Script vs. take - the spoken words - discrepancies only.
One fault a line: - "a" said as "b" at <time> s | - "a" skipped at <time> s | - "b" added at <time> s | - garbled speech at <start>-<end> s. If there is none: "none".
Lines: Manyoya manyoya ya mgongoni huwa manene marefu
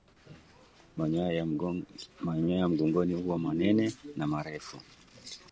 - "manyoya" skipped at 1.3 s
- "na" added at 4.2 s